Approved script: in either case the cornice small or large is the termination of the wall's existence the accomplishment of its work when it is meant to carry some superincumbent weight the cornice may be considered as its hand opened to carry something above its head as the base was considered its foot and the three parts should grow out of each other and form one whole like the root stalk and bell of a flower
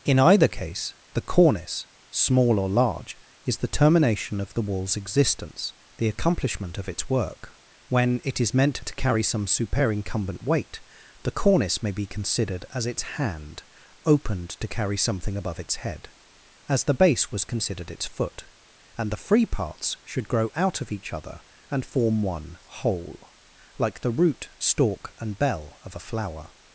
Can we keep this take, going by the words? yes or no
no